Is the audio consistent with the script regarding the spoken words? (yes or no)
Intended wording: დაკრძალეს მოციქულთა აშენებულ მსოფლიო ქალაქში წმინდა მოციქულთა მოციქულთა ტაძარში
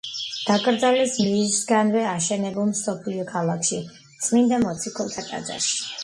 no